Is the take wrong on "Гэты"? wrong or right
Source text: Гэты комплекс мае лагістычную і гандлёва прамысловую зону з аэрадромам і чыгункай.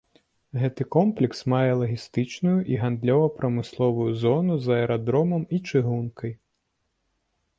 right